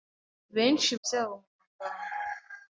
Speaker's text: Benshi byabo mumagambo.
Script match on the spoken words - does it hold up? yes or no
yes